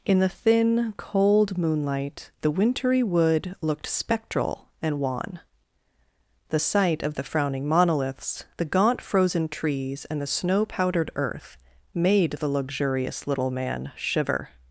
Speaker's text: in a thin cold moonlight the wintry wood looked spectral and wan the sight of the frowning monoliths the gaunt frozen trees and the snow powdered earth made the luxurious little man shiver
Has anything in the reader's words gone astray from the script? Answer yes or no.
yes